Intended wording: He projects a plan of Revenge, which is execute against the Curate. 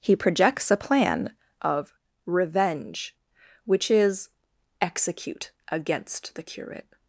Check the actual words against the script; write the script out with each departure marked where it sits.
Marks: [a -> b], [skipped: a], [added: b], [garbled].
He projects a plan of Revenge, which is execute against the Curate.